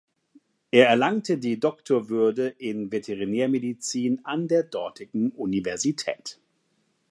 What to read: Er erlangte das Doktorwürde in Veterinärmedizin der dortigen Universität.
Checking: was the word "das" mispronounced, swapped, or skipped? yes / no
yes